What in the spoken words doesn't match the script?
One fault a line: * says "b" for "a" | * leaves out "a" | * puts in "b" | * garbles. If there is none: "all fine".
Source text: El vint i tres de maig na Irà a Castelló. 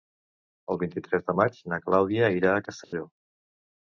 * puts in "Clàudia"